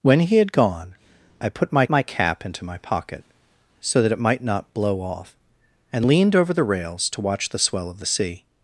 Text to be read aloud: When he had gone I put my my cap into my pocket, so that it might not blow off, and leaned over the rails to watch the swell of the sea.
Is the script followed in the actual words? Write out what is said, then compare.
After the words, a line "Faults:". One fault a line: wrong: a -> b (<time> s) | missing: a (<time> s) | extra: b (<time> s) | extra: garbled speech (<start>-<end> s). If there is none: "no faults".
When he had gone I put my my cap into my pocket, so that it might not blow off, and leaned over the rails to watch the swell of the sea.
Faults:
no faults